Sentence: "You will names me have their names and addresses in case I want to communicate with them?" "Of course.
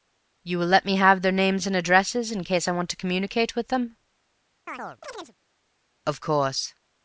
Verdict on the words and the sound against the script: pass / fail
fail